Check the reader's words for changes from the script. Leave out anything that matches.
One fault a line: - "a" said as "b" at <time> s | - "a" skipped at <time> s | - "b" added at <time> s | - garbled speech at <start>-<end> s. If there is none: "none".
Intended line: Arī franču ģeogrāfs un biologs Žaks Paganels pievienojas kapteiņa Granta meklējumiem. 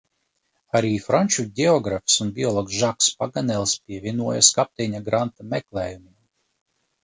none